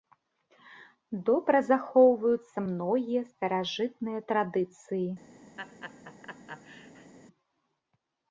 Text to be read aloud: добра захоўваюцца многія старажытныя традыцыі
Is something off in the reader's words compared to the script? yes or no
no